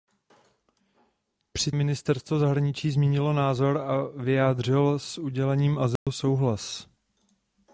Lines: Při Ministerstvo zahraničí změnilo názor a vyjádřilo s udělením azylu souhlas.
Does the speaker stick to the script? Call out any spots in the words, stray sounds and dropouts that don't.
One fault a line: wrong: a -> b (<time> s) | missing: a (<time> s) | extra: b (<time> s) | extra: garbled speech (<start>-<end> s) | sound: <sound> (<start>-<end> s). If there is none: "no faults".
sound: dropout (6.0-6.1 s)